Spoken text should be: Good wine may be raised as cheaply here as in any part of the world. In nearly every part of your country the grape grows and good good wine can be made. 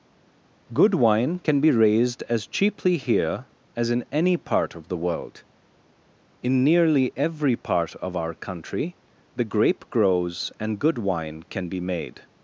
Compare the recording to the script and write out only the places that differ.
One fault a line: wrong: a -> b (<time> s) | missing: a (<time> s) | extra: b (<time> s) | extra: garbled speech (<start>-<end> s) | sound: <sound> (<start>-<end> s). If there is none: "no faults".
wrong: may -> can (1.4 s)
wrong: your -> our (8.2 s)
missing: good (11.0 s)